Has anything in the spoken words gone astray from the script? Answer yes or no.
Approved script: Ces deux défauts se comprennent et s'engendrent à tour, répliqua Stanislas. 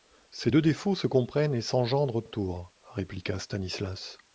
no